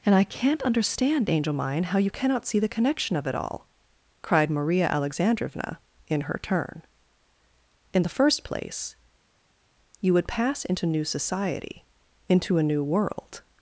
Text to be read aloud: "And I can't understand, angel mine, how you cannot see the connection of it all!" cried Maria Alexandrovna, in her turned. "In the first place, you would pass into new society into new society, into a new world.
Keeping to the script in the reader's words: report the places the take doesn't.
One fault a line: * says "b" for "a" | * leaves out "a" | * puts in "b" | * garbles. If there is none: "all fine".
* says "turn" for "turned"
* leaves out "new society into"